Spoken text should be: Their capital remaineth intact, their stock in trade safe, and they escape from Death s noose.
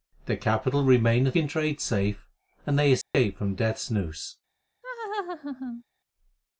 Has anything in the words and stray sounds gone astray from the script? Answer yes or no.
yes